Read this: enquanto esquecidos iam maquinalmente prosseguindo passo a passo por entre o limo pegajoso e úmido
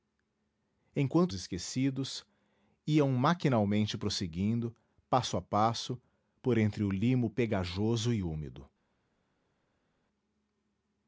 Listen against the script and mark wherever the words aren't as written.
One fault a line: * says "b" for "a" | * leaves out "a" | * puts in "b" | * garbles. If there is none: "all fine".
all fine